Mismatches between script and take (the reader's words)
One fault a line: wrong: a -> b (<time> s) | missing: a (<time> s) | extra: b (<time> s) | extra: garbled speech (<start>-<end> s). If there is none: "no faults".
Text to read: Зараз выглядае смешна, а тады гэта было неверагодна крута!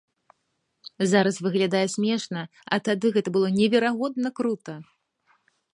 no faults